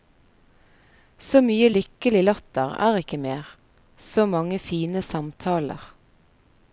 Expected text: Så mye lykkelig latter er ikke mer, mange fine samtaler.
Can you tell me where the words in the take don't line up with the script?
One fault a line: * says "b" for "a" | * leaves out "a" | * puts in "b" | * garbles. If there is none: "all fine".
* puts in "så"